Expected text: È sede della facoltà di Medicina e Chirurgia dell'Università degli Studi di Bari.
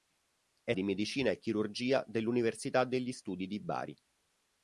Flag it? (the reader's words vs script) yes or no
yes